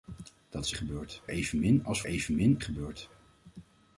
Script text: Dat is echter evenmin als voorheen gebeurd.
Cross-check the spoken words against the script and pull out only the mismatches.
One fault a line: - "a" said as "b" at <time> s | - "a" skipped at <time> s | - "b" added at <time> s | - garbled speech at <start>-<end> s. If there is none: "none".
- "echter" said as "gebeurd" at 0.7 s
- "voorheen" said as "evenmin" at 2.1 s